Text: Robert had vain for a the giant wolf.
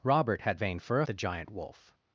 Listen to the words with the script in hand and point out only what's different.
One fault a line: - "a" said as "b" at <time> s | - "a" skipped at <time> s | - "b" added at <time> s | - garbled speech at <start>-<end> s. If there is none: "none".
none